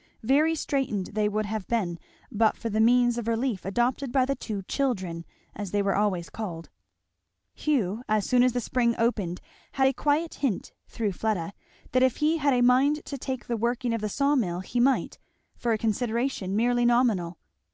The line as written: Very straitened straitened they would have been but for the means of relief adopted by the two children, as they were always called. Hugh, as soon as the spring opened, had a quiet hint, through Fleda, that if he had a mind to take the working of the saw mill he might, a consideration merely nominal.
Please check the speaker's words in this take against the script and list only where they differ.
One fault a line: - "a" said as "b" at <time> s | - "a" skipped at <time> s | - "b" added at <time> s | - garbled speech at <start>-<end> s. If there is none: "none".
- "straitened" skipped at 1.1 s
- "for" added at 15.6 s